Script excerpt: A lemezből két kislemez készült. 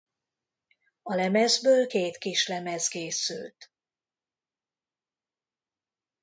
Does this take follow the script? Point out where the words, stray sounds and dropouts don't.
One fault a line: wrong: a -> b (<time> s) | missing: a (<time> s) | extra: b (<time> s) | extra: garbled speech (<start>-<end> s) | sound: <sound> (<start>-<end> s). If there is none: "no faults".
no faults